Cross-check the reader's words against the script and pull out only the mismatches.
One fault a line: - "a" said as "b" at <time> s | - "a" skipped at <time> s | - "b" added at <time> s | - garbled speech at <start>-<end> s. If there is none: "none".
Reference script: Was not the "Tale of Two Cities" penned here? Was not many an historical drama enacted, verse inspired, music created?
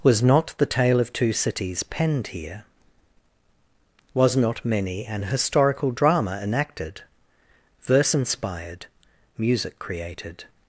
none